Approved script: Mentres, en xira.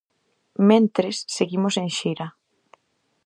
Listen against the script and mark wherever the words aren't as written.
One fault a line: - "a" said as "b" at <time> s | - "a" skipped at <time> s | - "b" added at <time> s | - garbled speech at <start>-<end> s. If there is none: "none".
- "seguimos" added at 1.4 s